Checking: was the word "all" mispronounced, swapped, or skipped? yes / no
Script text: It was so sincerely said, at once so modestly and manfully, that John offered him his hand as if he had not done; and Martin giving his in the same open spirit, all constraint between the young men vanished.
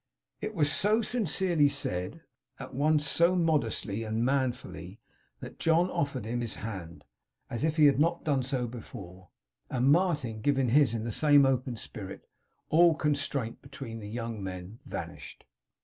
no